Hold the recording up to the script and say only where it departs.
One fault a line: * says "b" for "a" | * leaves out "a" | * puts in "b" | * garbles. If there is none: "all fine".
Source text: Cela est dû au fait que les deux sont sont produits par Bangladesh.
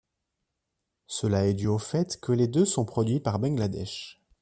* leaves out "sont"